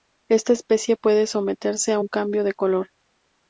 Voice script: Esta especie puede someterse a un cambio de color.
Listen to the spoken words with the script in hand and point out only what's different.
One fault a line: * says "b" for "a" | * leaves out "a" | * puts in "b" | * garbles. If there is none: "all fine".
all fine